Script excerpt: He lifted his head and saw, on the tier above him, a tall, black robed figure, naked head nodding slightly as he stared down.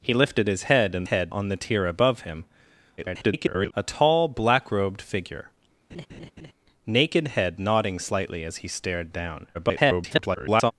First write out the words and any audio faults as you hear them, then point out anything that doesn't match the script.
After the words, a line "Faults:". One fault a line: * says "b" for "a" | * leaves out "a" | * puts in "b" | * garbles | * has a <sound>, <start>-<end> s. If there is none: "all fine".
He lifted his head and head, on the tier above him, [garbled] a tall, black robed figure, naked head nodding slightly as he stared down. [garbled]
Faults:
* says "head" for "saw"
* garbles
* has a laugh, 5.9-6.5 s
* garbles